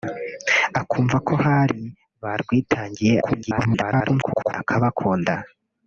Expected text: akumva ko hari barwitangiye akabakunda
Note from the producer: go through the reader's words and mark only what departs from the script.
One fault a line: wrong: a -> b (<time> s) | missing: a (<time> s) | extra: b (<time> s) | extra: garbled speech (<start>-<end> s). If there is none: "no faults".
extra: garbled speech (3.2-4.5 s)